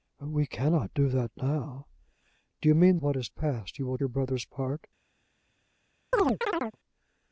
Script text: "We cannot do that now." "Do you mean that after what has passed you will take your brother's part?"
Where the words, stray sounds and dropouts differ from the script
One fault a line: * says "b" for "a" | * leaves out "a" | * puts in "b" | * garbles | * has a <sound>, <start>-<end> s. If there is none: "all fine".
* leaves out "that after"
* leaves out "take"
* has a chirp, 6.1-6.8 s